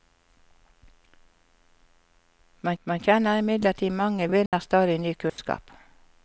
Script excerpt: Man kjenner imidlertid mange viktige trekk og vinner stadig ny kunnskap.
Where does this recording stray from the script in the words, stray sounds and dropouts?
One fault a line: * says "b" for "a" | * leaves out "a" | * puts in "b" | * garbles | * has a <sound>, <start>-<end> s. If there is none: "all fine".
* puts in "man"
* leaves out "viktige trekk"
* has a dropout, 4.5-4.5 s
* has a dropout, 5.3-5.4 s